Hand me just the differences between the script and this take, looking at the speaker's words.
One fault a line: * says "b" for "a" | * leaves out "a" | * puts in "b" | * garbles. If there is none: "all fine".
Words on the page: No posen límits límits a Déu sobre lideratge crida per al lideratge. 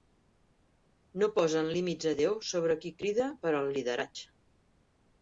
* leaves out "límits"
* says "qui" for "lideratge"